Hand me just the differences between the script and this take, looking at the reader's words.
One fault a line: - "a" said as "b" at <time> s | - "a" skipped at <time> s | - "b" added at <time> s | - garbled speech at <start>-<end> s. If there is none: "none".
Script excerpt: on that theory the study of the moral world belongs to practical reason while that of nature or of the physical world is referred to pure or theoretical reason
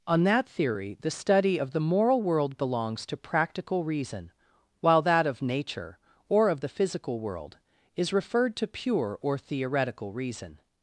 none